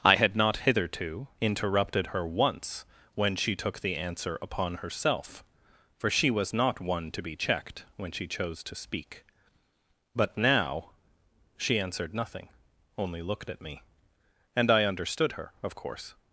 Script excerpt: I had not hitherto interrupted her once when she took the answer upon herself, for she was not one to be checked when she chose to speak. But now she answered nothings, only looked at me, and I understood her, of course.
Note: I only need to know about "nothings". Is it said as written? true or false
false